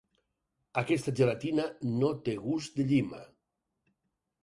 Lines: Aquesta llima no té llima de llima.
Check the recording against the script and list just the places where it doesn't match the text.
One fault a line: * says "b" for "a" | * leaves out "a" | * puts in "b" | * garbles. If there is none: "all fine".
* says "gelatina" for "llima"
* says "gust" for "llima"